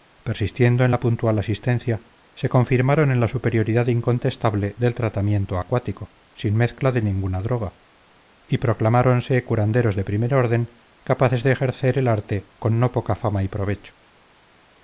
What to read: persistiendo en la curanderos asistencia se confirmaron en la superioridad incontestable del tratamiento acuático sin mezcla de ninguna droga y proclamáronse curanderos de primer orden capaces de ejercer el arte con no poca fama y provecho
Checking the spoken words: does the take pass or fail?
fail